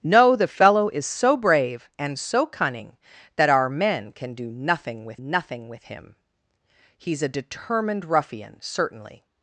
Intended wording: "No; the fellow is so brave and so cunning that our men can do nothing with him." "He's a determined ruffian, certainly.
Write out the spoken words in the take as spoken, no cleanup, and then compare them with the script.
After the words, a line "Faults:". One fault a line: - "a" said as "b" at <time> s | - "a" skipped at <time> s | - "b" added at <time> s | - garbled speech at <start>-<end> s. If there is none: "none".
"No; the fellow is so brave and so cunning that our men can do nothing with nothing with him." "He's a determined ruffian, certainly.
Faults:
- "nothing with" added at 5.1 s